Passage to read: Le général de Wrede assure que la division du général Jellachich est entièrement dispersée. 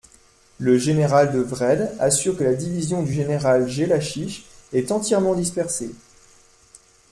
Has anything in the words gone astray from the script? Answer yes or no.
no